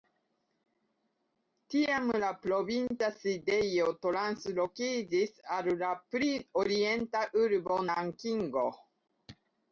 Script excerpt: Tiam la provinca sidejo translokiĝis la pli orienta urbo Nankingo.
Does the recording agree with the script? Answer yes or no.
no